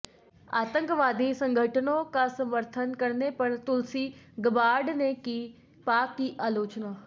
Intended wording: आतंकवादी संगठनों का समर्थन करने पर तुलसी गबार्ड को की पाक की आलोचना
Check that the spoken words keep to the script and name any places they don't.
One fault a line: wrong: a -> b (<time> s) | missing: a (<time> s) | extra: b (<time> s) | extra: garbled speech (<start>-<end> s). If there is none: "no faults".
wrong: को -> ने (5.0 s)